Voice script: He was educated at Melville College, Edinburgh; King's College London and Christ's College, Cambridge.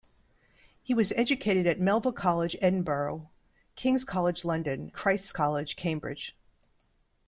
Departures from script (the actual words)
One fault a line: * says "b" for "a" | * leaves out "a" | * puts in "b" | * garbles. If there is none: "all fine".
* leaves out "and"